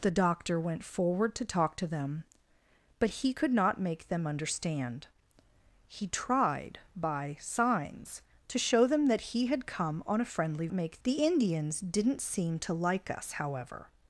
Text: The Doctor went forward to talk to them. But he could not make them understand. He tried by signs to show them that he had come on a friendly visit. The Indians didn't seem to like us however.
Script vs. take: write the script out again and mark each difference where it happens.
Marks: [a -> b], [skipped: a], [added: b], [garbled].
The Doctor went forward to talk to them. But he could not make them understand. He tried by signs to show them that he had come on a friendly [visit. -> make] The Indians didn't seem to like us however.